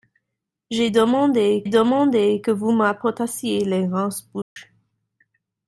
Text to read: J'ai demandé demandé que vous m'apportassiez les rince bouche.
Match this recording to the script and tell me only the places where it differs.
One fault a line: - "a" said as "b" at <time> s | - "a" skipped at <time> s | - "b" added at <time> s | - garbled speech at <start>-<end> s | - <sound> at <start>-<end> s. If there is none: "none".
- dropout at 4.4-4.6 s